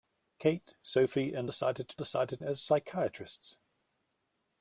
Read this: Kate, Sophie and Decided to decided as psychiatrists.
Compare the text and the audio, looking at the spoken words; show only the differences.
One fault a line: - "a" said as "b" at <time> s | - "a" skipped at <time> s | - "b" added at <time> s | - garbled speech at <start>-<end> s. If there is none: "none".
none